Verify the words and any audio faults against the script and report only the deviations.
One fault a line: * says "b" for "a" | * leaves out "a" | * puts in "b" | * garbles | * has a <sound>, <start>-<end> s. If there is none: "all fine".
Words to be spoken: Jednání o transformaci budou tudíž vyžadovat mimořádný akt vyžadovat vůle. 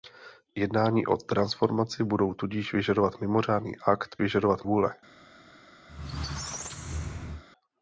* has a squeak, 5.9-7.4 s